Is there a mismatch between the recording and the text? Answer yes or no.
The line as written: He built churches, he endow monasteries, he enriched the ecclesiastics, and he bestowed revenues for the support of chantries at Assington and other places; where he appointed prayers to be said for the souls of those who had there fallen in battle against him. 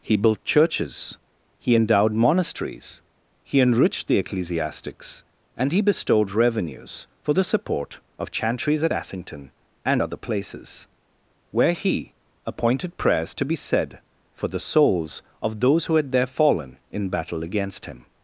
yes